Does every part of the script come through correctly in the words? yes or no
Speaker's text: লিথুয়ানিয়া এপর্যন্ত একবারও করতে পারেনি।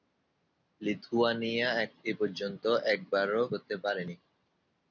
yes